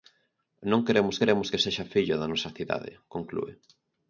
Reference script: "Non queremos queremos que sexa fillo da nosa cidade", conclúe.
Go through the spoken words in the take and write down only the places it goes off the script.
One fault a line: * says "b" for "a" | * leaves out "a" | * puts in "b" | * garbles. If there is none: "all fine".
all fine